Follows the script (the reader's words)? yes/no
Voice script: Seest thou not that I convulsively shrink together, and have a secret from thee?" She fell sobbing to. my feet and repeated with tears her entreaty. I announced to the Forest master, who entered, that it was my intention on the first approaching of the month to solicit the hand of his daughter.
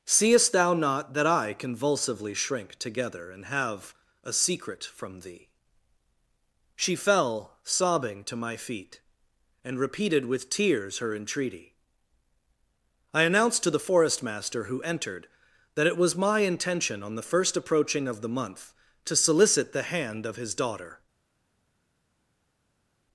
yes